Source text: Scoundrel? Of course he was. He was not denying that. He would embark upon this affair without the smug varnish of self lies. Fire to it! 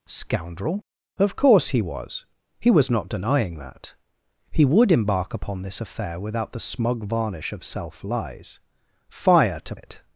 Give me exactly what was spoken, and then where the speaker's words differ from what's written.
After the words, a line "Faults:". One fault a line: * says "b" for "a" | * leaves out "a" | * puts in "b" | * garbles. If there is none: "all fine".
Scoundrel? Of course he was. He was not denying that. He would embark upon this affair without the smug varnish of self lies. Fire to it!
Faults:
all fine